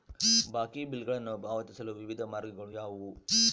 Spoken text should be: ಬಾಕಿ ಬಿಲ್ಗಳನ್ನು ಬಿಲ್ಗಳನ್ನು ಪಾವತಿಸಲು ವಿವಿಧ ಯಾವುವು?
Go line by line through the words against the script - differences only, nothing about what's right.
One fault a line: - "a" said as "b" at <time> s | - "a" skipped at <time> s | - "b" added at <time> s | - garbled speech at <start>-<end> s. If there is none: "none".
- "ಬಿಲ್ಗಳನ್ನು" skipped at 1.4 s
- "ಮಾರ್ಗಗಳು" added at 2.2 s